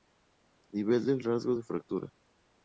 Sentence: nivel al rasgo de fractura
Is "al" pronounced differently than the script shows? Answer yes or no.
yes